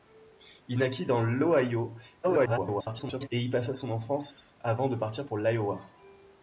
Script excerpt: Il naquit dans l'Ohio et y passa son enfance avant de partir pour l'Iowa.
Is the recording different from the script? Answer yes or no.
yes